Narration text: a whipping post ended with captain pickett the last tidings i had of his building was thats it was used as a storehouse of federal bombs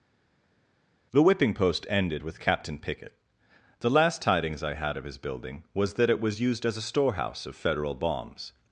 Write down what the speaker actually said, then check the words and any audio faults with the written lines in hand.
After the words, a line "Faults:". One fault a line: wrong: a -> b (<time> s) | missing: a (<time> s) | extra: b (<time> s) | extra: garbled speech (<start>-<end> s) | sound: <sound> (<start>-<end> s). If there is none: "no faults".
the whipping post ended with captain pickett the last tidings i had of his building was that it was used as a storehouse of federal bombs
Faults:
wrong: a -> the (1.1 s)
wrong: thats -> that (5.9 s)